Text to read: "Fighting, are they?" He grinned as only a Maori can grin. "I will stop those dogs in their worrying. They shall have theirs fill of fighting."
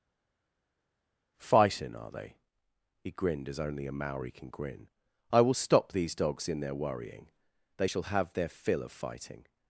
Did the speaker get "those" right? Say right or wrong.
wrong